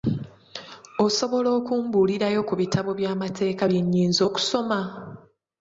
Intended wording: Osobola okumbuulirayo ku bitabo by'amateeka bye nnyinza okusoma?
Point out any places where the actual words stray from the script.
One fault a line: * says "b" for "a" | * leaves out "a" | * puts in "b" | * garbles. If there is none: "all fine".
all fine